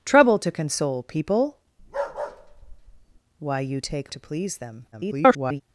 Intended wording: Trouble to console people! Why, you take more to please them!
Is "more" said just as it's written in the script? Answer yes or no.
no